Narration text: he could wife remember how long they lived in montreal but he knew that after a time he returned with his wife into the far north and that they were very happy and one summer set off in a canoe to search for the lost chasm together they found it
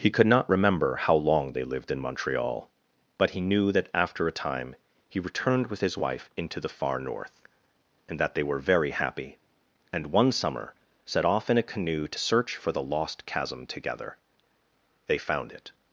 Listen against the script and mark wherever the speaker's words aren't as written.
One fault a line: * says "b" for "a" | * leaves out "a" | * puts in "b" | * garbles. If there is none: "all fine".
* says "not" for "wife"